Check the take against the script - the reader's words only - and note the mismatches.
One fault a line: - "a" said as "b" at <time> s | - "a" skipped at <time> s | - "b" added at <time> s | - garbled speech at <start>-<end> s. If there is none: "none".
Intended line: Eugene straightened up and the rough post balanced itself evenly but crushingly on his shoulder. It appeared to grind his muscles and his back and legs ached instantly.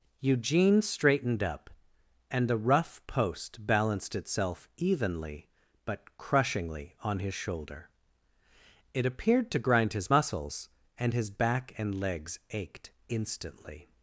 none